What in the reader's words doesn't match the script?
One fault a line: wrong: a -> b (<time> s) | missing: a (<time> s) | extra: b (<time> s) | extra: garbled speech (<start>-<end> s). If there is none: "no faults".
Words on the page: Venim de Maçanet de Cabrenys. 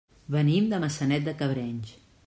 no faults